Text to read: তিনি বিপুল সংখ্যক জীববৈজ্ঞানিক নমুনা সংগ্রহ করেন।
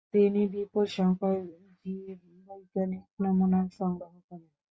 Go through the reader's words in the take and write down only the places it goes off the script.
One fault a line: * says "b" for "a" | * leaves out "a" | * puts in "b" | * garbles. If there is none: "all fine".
all fine